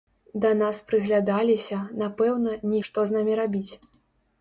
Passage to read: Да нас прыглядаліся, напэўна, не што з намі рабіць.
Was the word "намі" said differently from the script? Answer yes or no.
no